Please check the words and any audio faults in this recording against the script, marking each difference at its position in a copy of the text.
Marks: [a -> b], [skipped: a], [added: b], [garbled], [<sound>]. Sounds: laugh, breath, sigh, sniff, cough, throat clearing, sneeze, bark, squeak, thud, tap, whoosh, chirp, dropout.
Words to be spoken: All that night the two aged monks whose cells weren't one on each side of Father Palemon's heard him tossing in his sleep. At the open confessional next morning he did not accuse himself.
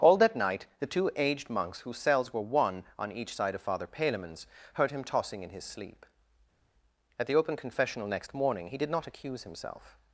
All that night the two aged monks whose cells [weren't -> were] one on each side of Father Palemon's heard him tossing in his sleep. At the open confessional next morning he did not accuse himself.